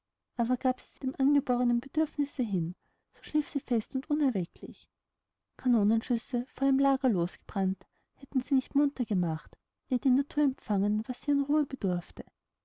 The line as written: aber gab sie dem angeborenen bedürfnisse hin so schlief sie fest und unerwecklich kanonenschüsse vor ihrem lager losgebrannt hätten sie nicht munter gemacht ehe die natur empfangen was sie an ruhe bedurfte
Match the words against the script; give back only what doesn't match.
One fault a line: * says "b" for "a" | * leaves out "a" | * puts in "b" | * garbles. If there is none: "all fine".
all fine